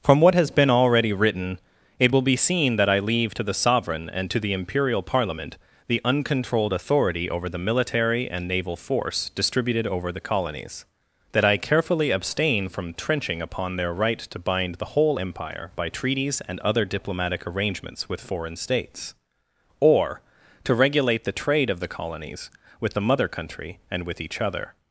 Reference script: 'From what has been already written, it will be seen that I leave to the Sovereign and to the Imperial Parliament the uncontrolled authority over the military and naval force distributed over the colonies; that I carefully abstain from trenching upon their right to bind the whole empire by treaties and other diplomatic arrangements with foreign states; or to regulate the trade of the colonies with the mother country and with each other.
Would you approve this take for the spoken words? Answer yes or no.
yes